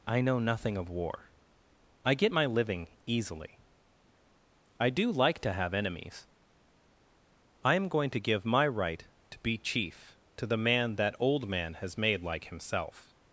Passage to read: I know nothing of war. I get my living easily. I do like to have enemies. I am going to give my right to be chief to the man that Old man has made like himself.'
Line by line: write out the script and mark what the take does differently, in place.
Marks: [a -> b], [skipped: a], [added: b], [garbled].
I know nothing of war. I get my living easily. I do like to have enemies. I am going to give my right to be chief to the man that Old man has made like himself.'